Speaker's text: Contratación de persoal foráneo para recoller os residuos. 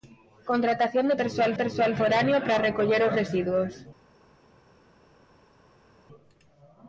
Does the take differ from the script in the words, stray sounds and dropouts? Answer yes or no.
yes